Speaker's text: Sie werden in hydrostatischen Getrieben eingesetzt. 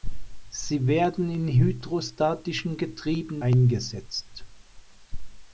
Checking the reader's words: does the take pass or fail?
pass